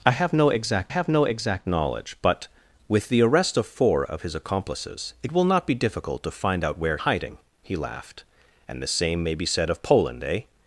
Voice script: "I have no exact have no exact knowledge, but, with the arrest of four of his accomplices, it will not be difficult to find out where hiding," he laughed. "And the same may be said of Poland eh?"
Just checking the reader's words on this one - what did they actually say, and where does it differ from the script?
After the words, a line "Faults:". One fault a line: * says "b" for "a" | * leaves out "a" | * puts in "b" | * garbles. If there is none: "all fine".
"I have no exact have no exact knowledge, but, with the arrest of four of his accomplices, it will not be difficult to find out where hiding," he laughed. "And the same may be said of Poland eh?"
Faults:
all fine